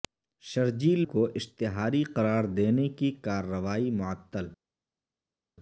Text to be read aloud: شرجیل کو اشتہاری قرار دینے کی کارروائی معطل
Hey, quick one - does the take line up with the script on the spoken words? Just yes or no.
yes